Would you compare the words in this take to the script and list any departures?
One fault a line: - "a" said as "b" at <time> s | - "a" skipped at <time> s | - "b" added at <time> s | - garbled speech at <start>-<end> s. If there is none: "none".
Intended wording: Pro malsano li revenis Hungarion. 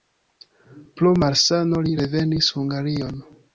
none